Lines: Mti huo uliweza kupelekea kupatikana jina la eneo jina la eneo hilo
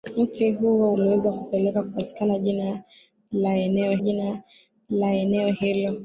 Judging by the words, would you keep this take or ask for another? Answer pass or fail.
pass